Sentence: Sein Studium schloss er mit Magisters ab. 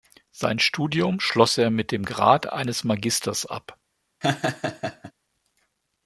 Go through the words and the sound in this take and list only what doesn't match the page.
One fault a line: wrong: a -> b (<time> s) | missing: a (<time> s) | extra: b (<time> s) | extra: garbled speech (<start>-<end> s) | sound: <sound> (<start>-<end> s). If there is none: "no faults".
extra: dem Grad eines (1.9 s)
sound: laugh (4.2-5.1 s)